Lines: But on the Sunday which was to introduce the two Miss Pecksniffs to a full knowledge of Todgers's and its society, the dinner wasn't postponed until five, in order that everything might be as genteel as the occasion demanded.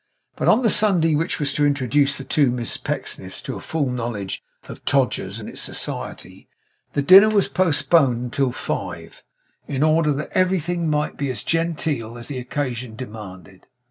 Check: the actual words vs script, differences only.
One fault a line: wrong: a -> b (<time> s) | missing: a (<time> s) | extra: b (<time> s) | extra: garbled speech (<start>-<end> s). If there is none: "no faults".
wrong: wasn't -> was (7.3 s)